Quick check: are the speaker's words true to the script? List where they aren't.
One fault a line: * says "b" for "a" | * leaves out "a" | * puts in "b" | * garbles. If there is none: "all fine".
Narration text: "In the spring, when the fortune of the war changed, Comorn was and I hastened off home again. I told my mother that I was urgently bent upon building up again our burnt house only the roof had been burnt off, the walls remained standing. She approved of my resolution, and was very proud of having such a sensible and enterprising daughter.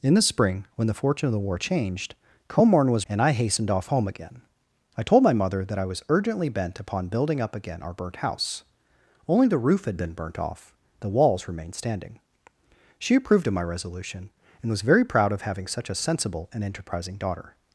all fine